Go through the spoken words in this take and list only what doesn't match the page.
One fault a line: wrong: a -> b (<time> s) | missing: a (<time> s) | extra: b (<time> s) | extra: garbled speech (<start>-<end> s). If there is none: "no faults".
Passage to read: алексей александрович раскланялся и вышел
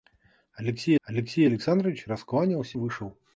extra: алексей (1.0 s)
missing: и (2.8 s)